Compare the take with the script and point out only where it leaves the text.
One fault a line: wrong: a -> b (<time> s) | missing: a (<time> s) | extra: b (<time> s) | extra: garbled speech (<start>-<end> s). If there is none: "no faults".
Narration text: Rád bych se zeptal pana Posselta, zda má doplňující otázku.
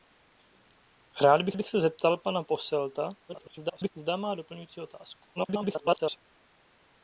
extra: bych (1.5 s)
extra: garbled speech (3.3-3.9 s)
extra: garbled speech (5.4-6.2 s)